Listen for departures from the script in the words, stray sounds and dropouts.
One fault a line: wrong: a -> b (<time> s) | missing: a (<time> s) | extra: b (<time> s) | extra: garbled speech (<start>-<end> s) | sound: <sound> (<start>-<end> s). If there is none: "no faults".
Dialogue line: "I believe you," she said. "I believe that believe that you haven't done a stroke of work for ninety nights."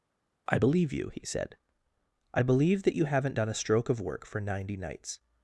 wrong: she -> he (1.1 s)
missing: believe that (3.0 s)